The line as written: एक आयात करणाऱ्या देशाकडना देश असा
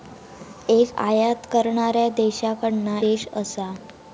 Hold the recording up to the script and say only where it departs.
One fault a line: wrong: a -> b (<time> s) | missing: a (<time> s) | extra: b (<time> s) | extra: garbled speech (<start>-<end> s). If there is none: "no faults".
no faults